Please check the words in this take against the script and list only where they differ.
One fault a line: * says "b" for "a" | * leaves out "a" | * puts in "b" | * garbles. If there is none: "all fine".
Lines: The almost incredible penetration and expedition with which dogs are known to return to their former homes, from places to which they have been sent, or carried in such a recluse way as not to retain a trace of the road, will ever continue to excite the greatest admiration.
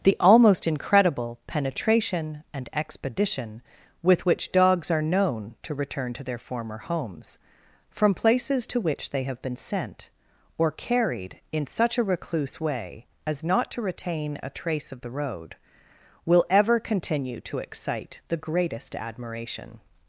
all fine